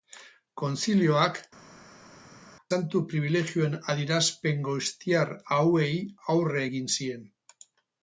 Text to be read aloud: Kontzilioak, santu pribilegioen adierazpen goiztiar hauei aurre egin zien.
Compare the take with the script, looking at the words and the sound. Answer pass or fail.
pass